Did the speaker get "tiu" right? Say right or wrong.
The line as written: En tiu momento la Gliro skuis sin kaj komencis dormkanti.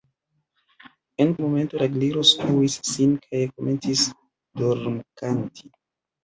wrong